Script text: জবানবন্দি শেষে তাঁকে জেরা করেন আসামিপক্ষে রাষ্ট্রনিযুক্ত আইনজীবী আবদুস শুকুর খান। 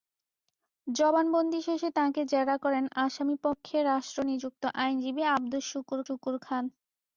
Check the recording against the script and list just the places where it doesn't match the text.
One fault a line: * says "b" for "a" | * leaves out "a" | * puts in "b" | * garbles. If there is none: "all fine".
* puts in "শুকুর"